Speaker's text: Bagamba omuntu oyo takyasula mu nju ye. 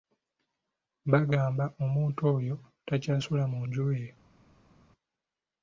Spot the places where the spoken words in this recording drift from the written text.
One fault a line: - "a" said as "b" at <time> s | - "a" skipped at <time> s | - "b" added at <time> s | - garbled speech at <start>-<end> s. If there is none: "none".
none